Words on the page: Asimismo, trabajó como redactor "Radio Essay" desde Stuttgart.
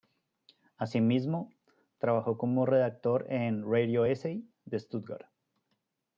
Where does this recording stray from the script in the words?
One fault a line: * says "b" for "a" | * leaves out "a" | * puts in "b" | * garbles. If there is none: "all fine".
* puts in "en"
* says "de" for "desde"